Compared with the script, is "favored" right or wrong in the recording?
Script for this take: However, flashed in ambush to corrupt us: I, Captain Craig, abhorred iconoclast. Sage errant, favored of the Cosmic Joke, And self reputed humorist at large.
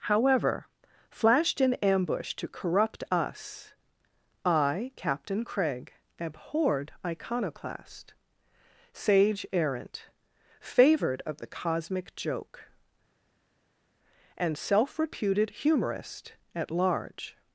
right